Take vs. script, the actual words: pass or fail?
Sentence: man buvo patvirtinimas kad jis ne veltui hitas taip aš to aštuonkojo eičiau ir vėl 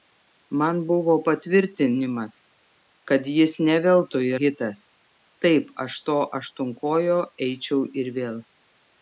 pass